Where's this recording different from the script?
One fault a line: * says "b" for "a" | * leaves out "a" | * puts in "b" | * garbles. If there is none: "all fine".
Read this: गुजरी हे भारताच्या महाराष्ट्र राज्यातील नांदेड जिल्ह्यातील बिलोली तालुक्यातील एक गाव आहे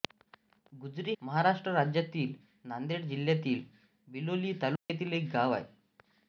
* leaves out "हे भारताच्या"